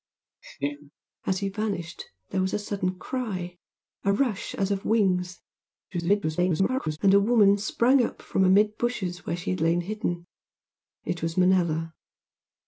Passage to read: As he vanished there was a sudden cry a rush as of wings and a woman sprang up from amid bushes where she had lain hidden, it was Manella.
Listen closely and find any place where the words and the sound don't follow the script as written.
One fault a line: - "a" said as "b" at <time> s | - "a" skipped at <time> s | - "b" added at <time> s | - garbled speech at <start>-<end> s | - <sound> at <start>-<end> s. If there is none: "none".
- laugh at 0.4-0.9 s
- garbled speech at 5.9-7.0 s